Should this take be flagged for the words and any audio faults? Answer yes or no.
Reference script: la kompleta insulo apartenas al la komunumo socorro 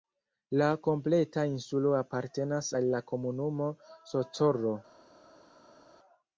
no